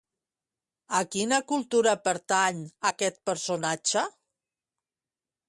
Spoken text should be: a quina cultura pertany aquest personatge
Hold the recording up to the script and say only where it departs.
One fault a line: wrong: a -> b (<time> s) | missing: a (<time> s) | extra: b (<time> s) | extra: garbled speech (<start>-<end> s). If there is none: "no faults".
no faults